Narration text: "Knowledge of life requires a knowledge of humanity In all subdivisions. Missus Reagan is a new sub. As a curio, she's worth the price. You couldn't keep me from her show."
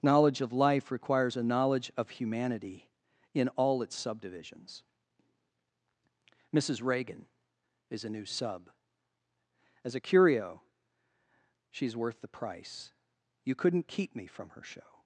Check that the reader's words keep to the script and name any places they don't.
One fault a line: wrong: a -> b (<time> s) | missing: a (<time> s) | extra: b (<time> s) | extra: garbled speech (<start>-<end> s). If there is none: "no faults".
extra: its (3.8 s)